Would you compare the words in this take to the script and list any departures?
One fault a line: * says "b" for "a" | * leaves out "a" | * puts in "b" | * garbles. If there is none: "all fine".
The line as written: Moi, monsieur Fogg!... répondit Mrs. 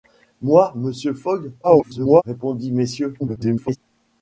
* garbles
* garbles